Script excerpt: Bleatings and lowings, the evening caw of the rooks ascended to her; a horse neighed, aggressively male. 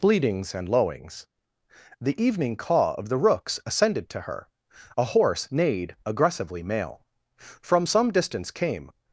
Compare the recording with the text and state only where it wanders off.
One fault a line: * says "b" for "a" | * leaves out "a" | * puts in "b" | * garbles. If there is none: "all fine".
* puts in "From some distance came"